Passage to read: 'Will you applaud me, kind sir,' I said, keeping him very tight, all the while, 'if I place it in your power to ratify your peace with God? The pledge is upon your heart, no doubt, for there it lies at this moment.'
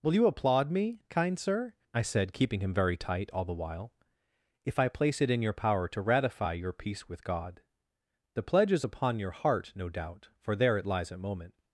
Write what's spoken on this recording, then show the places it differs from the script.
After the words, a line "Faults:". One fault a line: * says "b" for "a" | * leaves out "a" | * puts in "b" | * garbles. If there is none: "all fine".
'Will you applaud me, kind sir,' I said, keeping him very tight, all the while, 'if I place it in your power to ratify your peace with God? The pledge is upon your heart, no doubt, for there it lies at moment.'
Faults:
* leaves out "this"